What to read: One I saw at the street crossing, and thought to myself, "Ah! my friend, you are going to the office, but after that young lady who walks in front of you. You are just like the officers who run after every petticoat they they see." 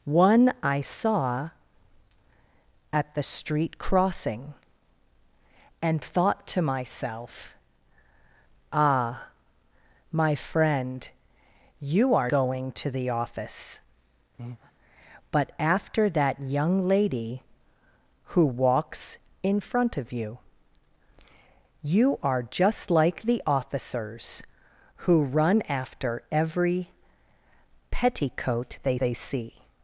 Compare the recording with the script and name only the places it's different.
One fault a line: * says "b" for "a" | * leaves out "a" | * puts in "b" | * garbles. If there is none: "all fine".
all fine